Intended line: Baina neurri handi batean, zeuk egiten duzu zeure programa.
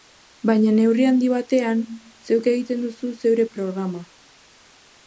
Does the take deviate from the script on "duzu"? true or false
false